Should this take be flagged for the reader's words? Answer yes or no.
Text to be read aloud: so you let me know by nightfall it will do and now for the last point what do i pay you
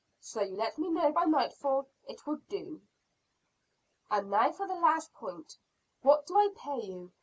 no